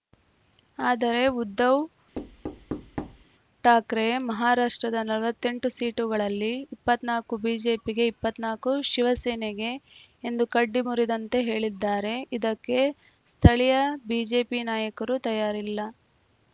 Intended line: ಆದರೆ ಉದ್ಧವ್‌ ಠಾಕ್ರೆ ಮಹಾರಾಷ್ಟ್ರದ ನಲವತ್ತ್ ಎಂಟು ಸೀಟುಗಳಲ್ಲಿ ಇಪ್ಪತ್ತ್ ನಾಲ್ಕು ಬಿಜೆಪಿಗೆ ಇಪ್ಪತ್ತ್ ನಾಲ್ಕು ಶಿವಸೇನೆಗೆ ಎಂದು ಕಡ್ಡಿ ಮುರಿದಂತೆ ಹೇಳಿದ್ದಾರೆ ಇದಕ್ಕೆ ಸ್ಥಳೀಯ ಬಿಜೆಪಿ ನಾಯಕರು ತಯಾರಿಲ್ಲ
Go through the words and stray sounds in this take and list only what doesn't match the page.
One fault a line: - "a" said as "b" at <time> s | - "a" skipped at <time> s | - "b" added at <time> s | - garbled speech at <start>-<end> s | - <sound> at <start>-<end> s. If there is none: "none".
- thud at 2.1-3.2 s